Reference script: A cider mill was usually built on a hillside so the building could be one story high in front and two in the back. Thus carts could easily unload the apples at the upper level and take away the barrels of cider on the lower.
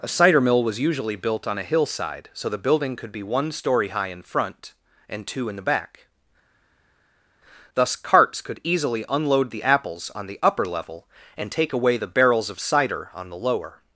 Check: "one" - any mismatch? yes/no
no